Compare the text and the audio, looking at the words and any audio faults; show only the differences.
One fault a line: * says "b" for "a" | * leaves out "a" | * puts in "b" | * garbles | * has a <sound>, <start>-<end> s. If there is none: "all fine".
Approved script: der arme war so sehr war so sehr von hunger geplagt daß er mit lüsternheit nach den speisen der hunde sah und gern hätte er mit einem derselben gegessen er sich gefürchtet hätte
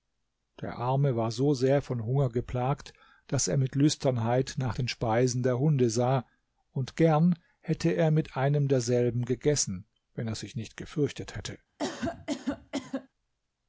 * leaves out "war so sehr"
* puts in "wenn"
* puts in "nicht"
* has a cough, 11.8-13.1 s